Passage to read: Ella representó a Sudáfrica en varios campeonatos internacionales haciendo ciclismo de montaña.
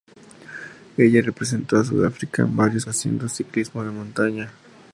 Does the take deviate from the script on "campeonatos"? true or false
true